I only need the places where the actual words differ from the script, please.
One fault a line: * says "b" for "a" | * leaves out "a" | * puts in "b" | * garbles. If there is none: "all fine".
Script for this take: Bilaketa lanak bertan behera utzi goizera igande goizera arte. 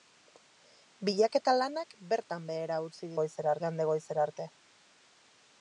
all fine